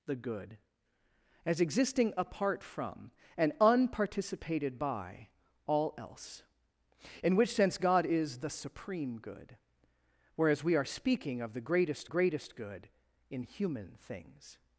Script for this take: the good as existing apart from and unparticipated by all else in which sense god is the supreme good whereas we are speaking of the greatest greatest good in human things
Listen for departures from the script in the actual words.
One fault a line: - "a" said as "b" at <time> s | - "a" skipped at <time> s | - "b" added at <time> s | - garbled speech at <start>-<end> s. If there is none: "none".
none